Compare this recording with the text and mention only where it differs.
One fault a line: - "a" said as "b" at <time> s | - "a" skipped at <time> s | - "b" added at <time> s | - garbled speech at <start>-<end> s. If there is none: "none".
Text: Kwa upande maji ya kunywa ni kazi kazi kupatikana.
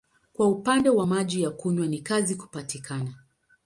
- "wa" added at 0.9 s
- "kazi" skipped at 2.4 s